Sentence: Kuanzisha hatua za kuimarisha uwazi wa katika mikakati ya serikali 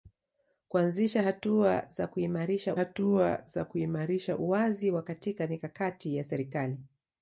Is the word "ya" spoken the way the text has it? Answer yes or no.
yes